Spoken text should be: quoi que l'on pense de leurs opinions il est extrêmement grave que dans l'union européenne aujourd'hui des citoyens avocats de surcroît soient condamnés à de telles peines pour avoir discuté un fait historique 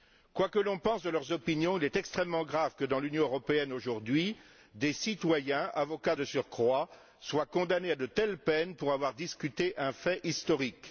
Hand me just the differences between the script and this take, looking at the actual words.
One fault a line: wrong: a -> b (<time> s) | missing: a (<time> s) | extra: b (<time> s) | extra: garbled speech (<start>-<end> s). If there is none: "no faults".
no faults